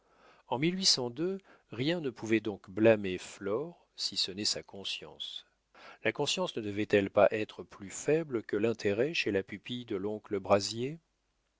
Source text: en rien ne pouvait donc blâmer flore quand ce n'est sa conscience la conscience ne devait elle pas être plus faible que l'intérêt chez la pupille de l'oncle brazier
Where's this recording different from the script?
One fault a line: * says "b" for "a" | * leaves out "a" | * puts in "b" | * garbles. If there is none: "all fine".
* says "si" for "quand"